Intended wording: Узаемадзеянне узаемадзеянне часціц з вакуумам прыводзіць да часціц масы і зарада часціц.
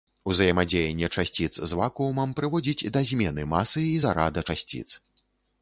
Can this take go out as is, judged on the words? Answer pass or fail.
fail